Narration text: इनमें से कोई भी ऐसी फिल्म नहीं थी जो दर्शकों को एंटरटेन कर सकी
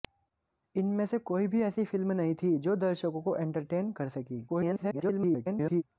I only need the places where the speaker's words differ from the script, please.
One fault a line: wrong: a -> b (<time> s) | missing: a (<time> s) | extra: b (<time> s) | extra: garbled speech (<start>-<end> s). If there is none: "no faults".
extra: garbled speech (4.5-5.8 s)